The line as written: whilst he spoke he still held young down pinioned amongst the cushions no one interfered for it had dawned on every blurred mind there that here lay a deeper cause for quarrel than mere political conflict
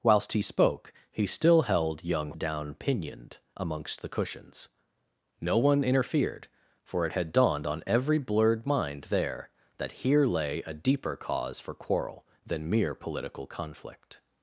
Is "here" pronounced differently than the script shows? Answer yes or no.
no